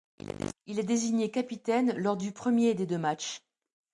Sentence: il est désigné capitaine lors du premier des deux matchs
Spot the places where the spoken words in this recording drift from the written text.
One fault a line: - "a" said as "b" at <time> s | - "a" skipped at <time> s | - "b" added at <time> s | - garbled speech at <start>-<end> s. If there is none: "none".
none